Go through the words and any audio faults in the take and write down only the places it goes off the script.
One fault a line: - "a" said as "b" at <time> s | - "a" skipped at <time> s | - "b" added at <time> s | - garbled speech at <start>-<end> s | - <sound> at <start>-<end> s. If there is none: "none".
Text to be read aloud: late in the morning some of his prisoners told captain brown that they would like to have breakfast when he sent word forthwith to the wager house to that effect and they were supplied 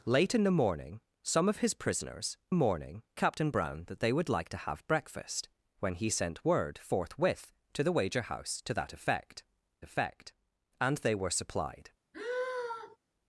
- "told" said as "morning" at 2.5 s
- "effect" added at 9.8 s
- sigh at 12.1-13.0 s